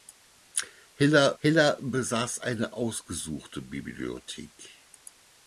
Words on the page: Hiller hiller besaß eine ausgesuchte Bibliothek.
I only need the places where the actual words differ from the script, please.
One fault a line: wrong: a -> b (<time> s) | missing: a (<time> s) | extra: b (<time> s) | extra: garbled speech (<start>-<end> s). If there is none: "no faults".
no faults